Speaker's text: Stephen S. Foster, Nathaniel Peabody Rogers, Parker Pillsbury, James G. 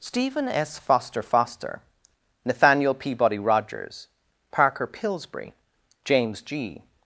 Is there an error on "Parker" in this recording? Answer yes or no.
no